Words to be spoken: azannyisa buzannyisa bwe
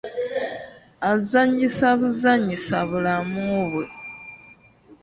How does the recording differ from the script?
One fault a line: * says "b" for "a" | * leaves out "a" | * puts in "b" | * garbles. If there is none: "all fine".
* puts in "bulamu"